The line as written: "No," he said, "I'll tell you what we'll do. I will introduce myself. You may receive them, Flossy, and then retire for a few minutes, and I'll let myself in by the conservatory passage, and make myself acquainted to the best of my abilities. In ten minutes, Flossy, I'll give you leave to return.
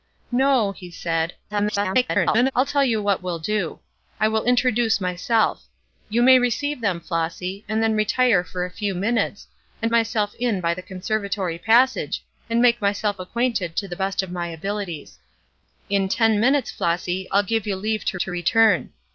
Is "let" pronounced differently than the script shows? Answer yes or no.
yes